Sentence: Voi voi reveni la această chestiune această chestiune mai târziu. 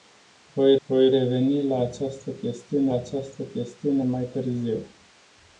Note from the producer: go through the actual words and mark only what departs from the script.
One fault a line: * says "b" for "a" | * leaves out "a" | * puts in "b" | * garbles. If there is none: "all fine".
all fine